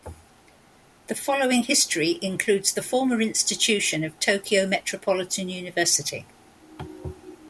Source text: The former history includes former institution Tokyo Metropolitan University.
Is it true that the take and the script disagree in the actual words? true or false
true